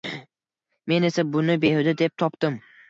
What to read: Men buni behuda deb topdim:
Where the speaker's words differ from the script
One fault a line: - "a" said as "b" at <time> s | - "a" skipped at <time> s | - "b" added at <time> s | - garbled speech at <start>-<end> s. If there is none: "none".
- "esa" added at 1.1 s